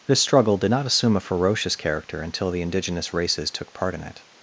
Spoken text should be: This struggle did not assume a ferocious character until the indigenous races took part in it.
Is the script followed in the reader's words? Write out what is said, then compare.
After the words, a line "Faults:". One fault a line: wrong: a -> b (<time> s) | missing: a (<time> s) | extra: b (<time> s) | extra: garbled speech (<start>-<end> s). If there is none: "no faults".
This struggle did not assume a ferocious character until the indigenous races took part in it.
Faults:
no faults